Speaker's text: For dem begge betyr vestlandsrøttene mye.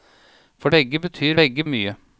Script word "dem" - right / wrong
wrong